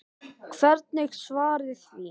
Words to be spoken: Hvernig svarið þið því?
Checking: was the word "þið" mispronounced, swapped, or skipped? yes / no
yes